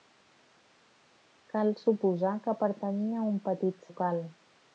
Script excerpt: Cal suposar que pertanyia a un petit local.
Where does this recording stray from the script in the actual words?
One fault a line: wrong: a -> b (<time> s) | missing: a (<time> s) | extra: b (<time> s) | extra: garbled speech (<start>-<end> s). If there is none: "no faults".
no faults